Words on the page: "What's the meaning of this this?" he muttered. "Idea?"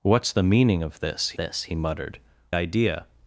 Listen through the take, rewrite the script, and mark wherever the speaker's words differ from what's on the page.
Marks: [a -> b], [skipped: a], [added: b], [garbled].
"What's the meaning of this this?" he muttered. "Idea?"